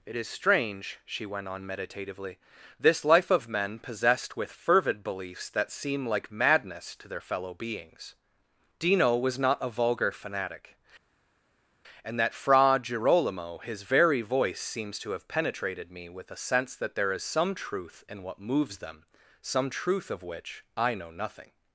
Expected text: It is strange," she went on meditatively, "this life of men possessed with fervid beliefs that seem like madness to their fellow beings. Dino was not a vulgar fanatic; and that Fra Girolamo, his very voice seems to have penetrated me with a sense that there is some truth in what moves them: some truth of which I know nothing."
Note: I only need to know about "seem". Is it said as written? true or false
true